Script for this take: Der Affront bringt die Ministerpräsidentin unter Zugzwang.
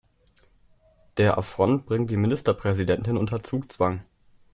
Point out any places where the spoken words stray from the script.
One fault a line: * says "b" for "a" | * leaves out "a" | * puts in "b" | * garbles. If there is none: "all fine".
all fine